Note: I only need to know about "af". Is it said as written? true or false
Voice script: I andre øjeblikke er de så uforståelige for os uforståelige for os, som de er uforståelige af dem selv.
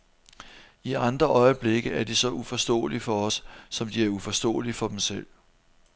false